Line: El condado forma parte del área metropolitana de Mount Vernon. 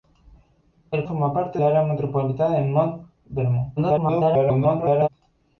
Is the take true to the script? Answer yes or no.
no